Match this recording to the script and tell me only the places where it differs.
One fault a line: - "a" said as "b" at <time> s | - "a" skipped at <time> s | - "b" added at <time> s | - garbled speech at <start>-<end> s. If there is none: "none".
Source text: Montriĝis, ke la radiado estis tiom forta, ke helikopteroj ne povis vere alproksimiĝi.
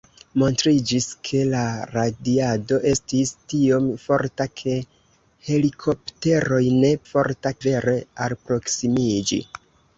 - "povis" said as "forta" at 7.1 s